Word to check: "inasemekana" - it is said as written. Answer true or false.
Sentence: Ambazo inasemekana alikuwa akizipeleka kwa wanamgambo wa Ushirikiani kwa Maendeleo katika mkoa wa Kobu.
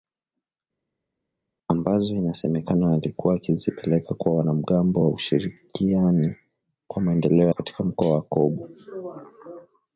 true